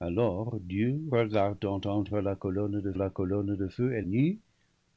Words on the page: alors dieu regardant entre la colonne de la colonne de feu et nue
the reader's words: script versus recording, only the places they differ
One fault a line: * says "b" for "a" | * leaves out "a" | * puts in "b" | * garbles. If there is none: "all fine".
all fine